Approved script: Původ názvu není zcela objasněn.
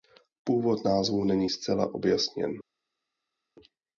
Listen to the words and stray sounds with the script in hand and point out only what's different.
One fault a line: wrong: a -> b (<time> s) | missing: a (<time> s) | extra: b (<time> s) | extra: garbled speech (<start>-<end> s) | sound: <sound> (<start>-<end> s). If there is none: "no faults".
no faults